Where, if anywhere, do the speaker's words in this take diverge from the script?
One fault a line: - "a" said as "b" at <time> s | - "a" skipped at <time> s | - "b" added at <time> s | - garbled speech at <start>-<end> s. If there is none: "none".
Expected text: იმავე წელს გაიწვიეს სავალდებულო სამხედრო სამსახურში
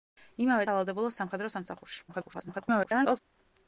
- "წელს გაიწვიეს" skipped at 0.6 s
- garbled speech at 2.1-3.2 s